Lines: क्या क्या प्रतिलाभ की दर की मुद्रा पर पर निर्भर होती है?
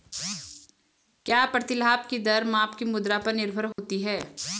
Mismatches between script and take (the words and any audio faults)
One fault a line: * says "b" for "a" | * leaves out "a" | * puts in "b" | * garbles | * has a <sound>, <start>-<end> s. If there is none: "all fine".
* leaves out "क्या"
* puts in "माप"
* leaves out "पर"
* has a dropout, 3.7-3.8 s